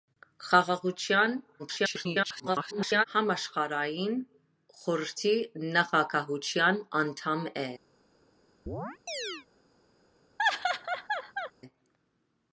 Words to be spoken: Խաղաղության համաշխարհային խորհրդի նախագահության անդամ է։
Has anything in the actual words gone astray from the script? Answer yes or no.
yes